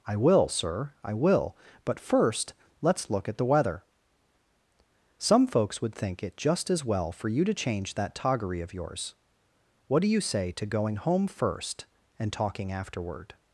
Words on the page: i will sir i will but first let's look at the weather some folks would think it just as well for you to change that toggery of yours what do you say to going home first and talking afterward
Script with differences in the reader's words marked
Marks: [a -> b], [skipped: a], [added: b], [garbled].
i will sir i will but first let's look at the weather some folks would think it just as well for you to change that toggery of yours what do you say to going home first and talking afterward